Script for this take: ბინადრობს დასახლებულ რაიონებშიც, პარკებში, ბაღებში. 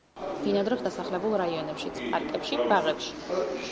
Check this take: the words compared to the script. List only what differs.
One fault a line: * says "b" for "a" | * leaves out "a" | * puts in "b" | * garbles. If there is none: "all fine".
all fine